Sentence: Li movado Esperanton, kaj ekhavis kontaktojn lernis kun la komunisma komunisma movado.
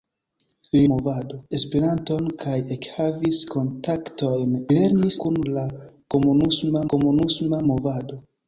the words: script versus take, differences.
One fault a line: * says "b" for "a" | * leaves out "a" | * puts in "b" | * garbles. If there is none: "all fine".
all fine